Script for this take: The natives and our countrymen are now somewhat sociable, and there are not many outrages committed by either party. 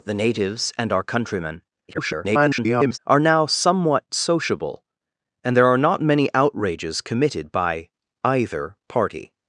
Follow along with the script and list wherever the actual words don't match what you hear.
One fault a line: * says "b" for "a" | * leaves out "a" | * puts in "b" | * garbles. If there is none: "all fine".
* garbles